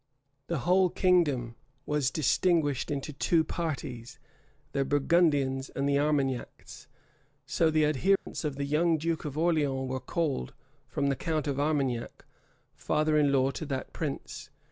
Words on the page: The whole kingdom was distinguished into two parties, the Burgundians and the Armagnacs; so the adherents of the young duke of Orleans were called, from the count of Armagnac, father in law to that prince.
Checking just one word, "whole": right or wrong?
right